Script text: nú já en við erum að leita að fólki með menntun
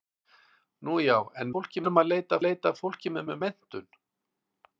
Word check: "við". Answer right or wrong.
wrong